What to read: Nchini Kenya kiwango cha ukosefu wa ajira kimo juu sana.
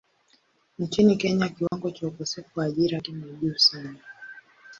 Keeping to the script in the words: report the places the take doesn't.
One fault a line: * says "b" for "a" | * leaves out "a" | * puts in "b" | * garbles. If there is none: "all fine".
all fine